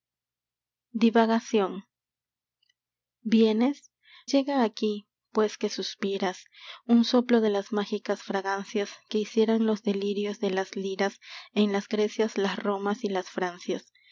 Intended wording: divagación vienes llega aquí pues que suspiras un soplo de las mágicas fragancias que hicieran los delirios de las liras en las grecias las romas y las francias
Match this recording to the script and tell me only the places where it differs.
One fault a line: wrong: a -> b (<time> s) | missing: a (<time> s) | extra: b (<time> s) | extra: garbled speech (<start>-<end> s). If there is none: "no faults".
no faults